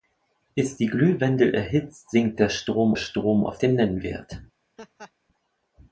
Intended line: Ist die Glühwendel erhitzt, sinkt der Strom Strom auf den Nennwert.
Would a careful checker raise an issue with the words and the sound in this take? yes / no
yes